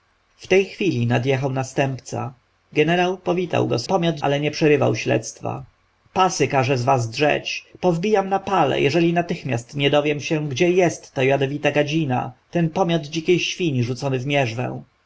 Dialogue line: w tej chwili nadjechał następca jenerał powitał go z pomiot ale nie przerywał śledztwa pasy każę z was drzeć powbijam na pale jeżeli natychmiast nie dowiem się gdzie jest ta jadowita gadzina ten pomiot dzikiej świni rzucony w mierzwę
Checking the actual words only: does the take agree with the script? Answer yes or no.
yes